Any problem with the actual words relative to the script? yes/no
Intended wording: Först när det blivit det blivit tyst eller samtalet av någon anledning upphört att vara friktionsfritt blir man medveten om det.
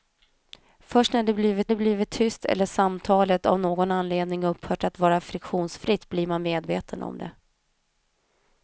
no